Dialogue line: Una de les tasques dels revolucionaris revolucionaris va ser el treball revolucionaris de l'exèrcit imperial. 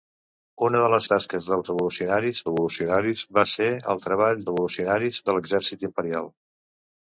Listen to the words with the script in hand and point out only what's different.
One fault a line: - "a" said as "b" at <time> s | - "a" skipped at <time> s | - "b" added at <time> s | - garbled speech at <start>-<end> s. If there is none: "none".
none